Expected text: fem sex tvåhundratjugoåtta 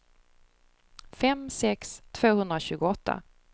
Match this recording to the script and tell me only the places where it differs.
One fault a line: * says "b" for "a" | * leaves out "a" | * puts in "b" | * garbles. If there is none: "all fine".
all fine